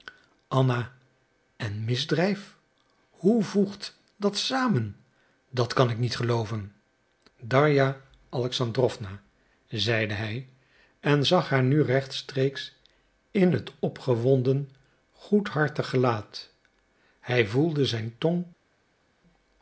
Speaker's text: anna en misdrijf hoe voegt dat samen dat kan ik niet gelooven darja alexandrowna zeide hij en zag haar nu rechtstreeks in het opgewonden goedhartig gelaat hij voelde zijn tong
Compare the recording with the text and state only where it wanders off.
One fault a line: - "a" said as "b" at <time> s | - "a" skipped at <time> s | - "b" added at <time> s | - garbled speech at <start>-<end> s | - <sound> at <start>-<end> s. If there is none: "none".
none